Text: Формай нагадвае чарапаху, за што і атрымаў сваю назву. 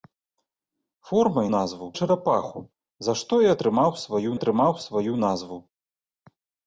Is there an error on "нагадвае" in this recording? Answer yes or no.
yes